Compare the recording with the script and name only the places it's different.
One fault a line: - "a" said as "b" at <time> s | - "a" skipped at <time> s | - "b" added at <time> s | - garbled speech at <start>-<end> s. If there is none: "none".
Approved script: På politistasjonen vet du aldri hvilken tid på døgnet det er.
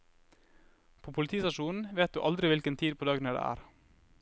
none